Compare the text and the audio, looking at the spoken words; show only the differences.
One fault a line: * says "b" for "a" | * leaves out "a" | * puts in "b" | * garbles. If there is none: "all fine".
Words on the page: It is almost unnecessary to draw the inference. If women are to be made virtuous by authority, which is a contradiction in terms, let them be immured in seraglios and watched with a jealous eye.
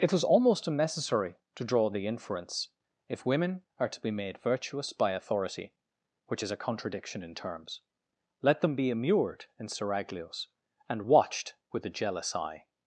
* says "was" for "is"